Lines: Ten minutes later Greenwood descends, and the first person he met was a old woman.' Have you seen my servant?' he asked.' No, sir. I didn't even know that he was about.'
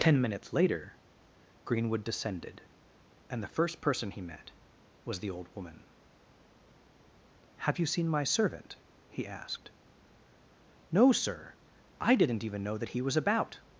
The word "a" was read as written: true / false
false